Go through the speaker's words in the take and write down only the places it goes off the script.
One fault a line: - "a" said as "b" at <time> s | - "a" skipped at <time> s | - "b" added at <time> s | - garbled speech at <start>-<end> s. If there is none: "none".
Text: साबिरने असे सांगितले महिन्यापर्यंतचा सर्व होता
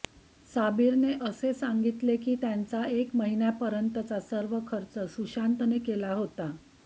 - "की त्यांचा एक" added at 2.2 s
- "खर्च सुशांतने केला" added at 4.7 s